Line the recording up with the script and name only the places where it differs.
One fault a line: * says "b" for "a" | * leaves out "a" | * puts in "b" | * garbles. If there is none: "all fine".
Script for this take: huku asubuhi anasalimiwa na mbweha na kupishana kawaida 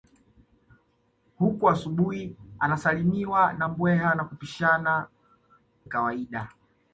all fine